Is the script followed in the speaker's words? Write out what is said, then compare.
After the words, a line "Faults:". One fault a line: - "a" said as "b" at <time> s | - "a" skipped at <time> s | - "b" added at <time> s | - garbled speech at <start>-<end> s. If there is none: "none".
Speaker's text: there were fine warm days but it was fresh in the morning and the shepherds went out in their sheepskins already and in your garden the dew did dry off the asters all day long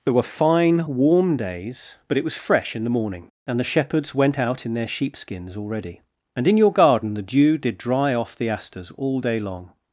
there were fine warm days but it was fresh in the morning and the shepherds went out in their sheepskins already and in your garden the dew did dry off the asters all day long
Faults:
none